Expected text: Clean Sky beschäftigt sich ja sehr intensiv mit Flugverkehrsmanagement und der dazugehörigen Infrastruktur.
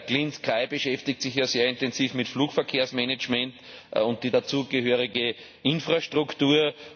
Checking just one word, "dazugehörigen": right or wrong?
right